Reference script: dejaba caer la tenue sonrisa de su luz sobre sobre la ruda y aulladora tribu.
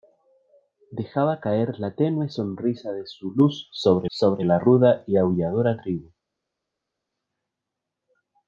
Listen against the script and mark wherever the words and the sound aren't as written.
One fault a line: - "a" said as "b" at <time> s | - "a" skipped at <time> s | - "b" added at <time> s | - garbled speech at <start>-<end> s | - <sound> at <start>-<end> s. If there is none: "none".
none